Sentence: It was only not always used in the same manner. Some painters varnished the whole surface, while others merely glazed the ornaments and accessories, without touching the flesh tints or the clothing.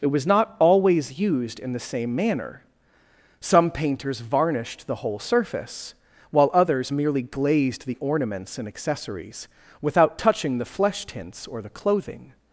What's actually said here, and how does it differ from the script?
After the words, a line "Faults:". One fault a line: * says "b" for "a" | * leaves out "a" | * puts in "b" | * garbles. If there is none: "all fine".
It was not always used in the same manner. Some painters varnished the whole surface, while others merely glazed the ornaments and accessories, without touching the flesh tints or the clothing.
Faults:
* leaves out "only"